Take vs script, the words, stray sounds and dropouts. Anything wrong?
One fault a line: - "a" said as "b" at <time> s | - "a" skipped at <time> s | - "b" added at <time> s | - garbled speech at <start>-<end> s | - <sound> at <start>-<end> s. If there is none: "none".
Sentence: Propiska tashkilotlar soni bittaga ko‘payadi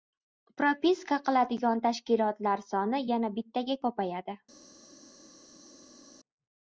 - "qiladigan" added at 1.3 s
- "yana" added at 3.1 s